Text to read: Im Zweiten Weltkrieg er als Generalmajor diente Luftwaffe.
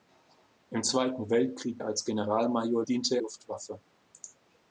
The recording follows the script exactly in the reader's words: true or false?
true